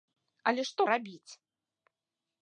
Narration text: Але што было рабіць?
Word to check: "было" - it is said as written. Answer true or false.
false